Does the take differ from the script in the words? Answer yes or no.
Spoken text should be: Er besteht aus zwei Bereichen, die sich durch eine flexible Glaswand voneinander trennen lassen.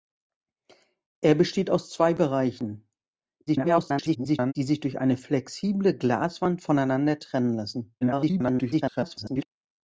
yes